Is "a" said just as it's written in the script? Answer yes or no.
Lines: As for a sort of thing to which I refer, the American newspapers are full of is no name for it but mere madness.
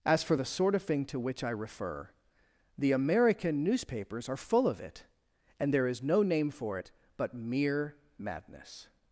no